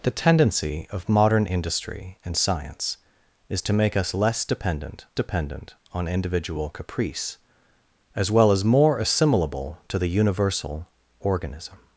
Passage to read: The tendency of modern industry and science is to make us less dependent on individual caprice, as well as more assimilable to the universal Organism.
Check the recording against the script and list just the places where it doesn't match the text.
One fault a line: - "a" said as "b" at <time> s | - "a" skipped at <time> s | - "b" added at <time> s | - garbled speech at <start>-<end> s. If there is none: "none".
- "dependent" added at 5.1 s